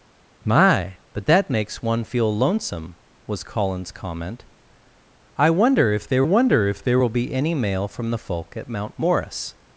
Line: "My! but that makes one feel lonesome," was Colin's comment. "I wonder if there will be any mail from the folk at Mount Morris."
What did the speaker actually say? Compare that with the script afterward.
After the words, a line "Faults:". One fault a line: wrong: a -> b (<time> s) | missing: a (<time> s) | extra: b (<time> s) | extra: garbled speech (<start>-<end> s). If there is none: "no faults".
"My! but that makes one feel lonesome," was Colin's comment. "I wonder if there wonder if there will be any mail from the folk at Mount Morris."
Faults:
extra: wonder if there (6.2 s)